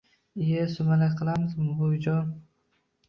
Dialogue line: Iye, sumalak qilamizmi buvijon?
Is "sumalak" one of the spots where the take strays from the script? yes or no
no